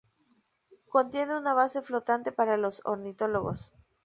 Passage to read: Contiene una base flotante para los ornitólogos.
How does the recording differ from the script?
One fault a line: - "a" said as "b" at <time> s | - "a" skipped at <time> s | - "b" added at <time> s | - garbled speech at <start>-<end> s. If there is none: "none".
none